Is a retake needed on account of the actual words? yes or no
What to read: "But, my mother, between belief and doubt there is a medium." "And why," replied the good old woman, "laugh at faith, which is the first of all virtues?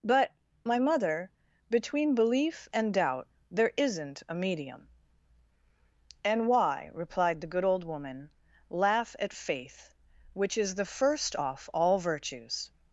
yes